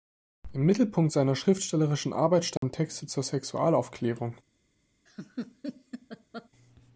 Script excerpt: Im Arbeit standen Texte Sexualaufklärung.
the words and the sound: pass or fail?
fail